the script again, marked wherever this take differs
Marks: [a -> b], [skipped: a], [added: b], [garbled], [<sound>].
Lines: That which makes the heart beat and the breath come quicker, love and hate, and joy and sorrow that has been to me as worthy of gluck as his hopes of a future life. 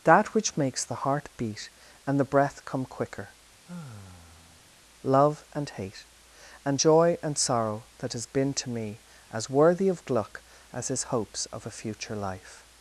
That which makes the heart beat and the breath come quicker, [sigh] love and hate, and joy and sorrow that has been to me as worthy of gluck as his hopes of a future life.